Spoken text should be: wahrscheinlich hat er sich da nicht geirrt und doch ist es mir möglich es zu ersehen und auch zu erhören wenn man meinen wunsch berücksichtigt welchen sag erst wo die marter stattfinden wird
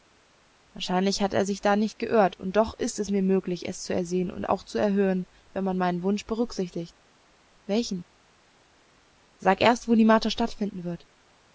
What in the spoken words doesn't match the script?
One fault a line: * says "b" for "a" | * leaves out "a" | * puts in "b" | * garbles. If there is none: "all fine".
all fine